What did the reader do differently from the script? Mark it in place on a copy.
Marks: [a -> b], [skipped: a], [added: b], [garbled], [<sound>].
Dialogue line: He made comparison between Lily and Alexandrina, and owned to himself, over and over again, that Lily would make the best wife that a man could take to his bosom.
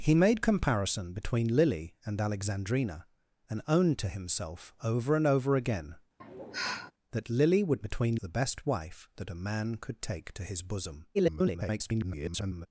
He made comparison between Lily and Alexandrina, and owned to himself, over and over again, [sigh] that Lily would [make -> between] the best wife that a man could take to his bosom. [garbled]